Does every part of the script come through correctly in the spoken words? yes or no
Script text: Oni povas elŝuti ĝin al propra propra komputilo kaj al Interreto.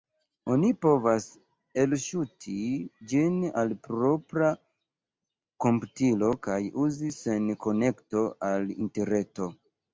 no